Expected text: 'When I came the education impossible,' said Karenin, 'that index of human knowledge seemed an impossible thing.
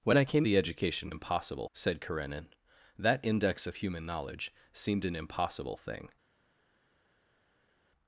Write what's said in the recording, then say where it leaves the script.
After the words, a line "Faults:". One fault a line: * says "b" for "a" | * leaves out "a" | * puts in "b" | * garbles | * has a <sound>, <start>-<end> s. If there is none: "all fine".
'When I came the education impossible,' said Karenin, 'that index of human knowledge seemed an impossible thing.
Faults:
all fine